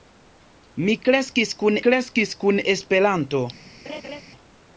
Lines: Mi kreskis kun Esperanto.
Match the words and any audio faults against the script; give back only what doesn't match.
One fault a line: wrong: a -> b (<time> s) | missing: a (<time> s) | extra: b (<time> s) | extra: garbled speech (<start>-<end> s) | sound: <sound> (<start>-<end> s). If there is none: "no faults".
extra: kreskis kun (1.9 s)
sound: laugh (3.8-4.2 s)